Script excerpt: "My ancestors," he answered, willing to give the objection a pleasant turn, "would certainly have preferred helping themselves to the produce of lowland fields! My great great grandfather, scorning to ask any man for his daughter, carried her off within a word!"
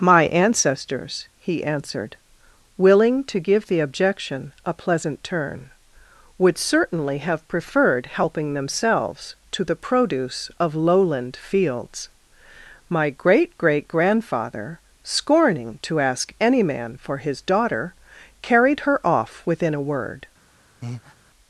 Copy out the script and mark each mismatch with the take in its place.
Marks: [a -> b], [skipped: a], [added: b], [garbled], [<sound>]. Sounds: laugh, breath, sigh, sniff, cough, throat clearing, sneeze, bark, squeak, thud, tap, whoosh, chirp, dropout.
"My ancestors," he answered, willing to give the objection a pleasant turn, "would certainly have preferred helping themselves to the produce of lowland fields! My great great grandfather, scorning to ask any man for his daughter, carried her off within a word!" [breath]